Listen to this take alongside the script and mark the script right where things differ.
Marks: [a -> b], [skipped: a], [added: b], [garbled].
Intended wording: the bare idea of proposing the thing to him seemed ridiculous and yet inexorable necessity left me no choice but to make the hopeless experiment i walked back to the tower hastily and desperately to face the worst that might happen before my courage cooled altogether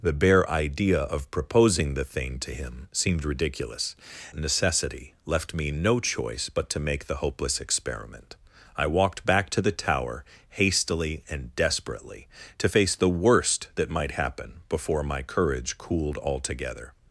the bare idea of proposing the thing to him seemed ridiculous [skipped: and yet inexorable] necessity left me no choice but to make the hopeless experiment i walked back to the tower hastily and desperately to face the worst that might happen before my courage cooled altogether